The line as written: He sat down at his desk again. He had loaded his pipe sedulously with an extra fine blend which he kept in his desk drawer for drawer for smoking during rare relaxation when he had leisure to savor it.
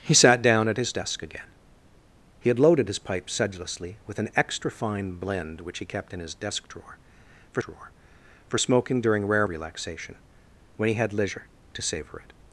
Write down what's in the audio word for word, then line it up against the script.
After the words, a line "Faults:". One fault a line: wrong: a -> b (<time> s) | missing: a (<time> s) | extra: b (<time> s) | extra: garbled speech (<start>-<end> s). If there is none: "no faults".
He sat down at his desk again. He had loaded his pipe sedulously with an extra fine blend which he kept in his desk drawer for drawer for smoking during rare relaxation when he had leisure to savor it.
Faults:
no faults